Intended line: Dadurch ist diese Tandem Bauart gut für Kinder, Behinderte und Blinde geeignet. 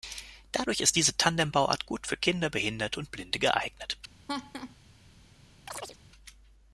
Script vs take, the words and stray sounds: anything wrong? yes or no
yes